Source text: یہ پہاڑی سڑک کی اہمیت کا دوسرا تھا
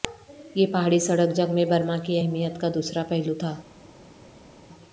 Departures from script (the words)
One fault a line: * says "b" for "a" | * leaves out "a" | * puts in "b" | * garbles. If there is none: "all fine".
* puts in "جنگ میں برما"
* puts in "پہلو"